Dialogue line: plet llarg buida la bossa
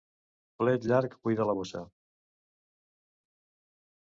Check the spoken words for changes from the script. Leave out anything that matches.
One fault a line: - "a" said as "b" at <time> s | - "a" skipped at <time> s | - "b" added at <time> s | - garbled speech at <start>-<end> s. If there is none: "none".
none